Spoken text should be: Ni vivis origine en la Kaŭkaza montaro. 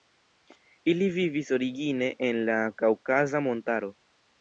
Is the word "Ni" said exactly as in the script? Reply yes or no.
no